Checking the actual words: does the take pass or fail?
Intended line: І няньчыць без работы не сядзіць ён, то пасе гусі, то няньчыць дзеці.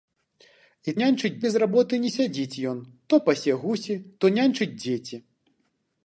pass